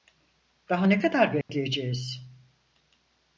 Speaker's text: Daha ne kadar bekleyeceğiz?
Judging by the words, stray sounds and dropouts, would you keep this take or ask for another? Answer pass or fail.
fail